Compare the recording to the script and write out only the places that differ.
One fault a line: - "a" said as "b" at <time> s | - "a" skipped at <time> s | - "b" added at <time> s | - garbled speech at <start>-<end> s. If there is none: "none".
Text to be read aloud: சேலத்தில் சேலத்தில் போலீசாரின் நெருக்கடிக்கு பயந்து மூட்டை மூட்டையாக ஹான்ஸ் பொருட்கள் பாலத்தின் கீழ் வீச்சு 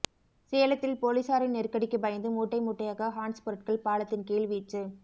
- "சேலத்தில்" skipped at 0.9 s